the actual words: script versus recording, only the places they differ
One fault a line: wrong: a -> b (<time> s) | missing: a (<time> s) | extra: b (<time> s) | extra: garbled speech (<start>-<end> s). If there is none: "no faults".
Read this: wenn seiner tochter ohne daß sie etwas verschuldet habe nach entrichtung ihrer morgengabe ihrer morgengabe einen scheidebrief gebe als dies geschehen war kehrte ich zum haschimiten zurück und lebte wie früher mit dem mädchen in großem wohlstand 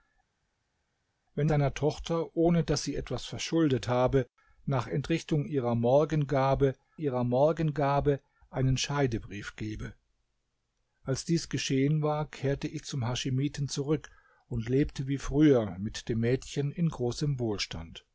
no faults